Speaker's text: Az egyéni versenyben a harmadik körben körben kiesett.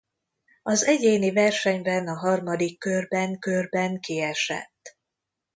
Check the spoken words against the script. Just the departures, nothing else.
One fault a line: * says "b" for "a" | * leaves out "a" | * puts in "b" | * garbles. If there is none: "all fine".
all fine